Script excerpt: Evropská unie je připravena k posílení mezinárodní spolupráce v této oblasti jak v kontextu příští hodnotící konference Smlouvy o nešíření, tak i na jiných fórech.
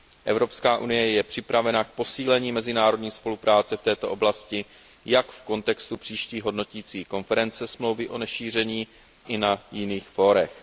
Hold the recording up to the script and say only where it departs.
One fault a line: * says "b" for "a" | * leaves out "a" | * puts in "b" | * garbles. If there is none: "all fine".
* leaves out "tak"